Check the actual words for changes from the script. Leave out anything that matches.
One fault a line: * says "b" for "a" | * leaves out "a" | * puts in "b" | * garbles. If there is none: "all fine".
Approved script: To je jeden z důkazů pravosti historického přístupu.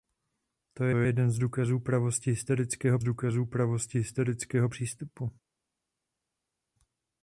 * puts in "je"
* puts in "důkazů pravosti historického"